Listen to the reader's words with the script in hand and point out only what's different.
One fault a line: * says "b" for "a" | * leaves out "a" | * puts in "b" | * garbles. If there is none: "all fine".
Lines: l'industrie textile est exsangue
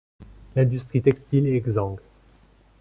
all fine